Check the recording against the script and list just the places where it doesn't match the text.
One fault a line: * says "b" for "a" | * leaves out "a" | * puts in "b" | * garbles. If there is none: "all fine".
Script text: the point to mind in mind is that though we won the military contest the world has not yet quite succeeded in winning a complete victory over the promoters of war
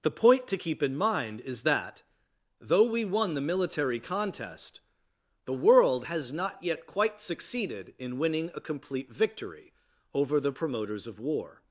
* says "keep" for "mind"